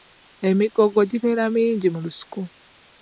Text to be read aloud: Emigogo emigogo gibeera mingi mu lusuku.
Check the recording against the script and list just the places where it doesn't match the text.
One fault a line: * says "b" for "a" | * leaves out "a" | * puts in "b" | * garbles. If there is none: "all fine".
* leaves out "emigogo"